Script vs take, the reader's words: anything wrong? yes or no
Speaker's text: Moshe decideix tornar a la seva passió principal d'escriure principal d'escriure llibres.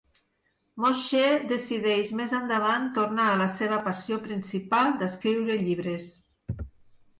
yes